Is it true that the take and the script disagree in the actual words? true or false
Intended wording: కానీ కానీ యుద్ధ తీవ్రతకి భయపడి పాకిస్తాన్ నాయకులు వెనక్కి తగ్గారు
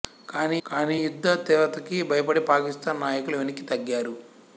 false